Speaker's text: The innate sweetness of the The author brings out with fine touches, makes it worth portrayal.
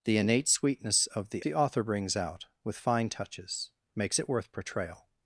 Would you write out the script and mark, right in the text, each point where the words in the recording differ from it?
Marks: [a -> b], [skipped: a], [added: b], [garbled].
The innate sweetness of the The author brings out with fine touches, makes it worth portrayal.